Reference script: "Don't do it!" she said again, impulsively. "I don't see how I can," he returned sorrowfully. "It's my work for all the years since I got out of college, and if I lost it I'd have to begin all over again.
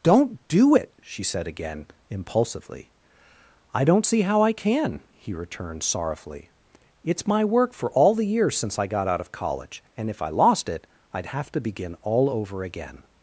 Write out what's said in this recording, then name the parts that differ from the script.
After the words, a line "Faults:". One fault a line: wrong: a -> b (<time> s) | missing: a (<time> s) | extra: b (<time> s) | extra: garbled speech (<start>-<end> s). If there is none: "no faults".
"Don't do it!" she said again, impulsively. "I don't see how I can," he returned sorrowfully. "It's my work for all the years since I got out of college, and if I lost it I'd have to begin all over again.
Faults:
no faults